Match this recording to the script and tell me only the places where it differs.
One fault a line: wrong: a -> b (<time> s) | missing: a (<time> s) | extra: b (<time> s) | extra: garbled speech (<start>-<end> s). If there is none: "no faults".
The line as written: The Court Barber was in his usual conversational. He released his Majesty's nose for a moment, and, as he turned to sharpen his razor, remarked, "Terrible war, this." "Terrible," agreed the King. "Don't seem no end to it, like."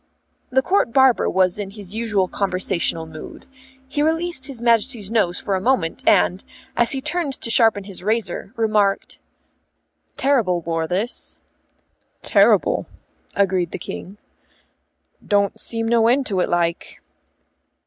extra: mood (3.0 s)